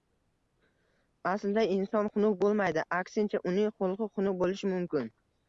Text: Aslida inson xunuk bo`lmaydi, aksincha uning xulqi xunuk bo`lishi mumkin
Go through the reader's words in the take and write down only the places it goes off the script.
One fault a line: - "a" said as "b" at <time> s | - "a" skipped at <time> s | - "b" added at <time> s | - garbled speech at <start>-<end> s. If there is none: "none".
none